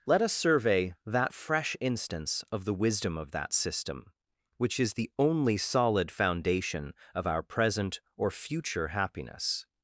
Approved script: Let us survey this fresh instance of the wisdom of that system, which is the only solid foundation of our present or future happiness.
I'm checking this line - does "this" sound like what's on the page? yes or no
no